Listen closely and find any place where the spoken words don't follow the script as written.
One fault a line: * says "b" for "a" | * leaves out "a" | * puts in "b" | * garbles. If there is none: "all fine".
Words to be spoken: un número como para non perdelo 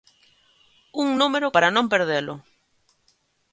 * leaves out "como"